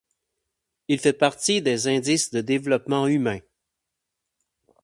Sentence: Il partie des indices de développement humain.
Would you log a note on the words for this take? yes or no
yes